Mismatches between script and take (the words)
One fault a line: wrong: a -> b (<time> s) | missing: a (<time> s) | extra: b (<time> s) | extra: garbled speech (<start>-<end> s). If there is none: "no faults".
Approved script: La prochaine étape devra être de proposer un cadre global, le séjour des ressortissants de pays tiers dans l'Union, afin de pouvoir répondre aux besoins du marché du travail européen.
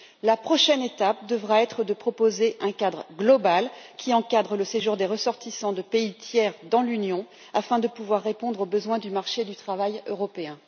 extra: qui encadre (4.0 s)